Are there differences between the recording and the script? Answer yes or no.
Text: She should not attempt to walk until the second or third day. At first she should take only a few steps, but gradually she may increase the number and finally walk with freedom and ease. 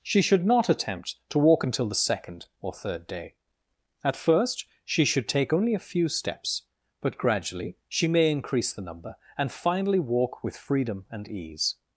no